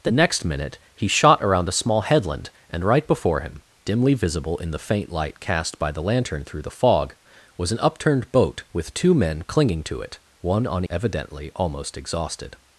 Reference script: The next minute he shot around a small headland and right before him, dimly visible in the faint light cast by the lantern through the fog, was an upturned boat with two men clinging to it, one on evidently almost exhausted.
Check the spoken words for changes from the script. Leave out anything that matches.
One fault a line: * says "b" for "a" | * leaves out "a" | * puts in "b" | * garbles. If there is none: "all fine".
all fine